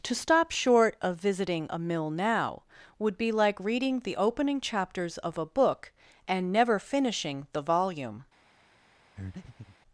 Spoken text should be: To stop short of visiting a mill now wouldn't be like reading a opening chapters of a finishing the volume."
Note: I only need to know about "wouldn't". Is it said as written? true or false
false